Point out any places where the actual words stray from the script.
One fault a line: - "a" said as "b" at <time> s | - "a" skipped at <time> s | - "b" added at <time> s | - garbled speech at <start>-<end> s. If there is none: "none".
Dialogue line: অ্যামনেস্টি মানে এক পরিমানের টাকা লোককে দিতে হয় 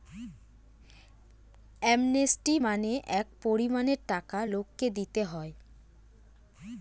none